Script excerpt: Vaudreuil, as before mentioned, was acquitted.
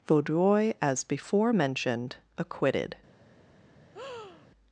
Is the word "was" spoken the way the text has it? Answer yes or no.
no